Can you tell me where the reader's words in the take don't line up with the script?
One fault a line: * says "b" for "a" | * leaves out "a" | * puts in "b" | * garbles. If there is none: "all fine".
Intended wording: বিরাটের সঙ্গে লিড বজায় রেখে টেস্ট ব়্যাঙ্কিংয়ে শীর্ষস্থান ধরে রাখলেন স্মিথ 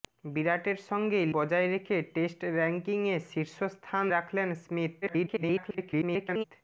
* leaves out "লিড"
* leaves out "ধরে"
* garbles